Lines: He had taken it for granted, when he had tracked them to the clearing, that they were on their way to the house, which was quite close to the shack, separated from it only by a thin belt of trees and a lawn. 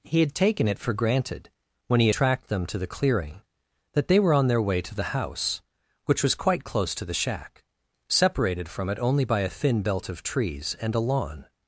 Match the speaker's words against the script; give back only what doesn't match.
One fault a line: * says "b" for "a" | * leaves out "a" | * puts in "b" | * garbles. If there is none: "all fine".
* leaves out "had"